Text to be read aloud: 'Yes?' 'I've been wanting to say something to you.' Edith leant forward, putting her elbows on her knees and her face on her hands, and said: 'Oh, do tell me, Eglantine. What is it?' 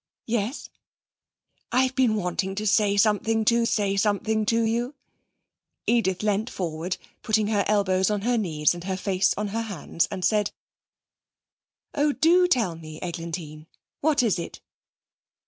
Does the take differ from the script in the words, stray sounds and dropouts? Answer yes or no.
yes